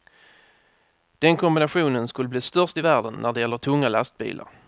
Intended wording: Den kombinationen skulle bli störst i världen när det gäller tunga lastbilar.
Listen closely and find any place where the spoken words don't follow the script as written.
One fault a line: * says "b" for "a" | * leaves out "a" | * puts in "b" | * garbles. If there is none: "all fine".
all fine